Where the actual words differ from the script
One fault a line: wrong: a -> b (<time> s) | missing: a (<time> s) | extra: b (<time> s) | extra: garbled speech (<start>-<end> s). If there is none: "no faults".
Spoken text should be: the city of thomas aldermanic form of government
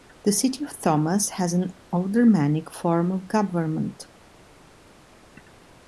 extra: has an (1.3 s)